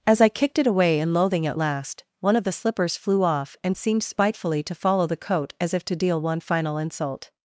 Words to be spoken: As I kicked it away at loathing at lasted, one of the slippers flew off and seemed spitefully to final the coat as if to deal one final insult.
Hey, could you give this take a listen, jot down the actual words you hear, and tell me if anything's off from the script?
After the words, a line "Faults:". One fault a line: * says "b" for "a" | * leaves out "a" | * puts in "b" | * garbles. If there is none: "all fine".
As I kicked it away in loathing at last, one of the slippers flew off and seemed spitefully to follow the coat as if to deal one final insult.
Faults:
* says "in" for "at"
* says "last" for "lasted"
* says "follow" for "final"